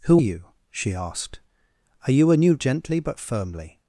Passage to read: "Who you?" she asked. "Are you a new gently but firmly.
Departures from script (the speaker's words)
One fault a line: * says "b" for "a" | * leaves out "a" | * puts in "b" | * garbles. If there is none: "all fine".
all fine